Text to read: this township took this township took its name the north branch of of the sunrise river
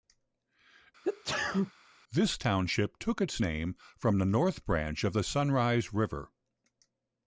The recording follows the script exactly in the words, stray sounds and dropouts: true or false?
false